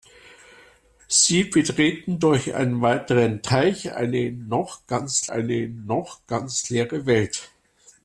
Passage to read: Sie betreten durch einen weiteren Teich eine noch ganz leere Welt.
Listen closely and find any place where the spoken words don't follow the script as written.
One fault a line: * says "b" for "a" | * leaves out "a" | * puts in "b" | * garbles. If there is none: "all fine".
* puts in "eine noch ganz"